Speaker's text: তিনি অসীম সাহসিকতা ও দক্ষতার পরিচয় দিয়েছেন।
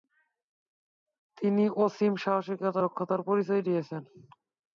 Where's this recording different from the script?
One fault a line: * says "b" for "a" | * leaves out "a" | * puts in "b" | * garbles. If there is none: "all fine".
* leaves out "ও"